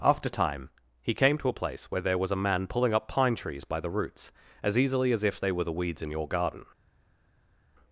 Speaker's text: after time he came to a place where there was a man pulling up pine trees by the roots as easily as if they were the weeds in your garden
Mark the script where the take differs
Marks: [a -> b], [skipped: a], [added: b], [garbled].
after time he came to a place where there was a man pulling up pine trees by the roots as easily as if they were the weeds in your garden